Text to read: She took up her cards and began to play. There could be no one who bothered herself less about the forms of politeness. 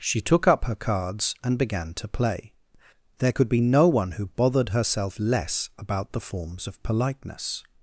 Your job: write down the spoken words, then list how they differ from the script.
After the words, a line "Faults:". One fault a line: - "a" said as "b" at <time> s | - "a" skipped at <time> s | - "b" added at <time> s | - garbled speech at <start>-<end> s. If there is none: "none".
She took up her cards and began to play. There could be no one who bothered herself less about the forms of politeness.
Faults:
none